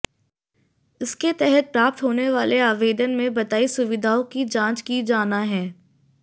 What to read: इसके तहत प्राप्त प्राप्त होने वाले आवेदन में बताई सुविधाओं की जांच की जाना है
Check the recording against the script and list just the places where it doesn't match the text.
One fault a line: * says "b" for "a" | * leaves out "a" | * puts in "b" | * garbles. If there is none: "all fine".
* leaves out "प्राप्त"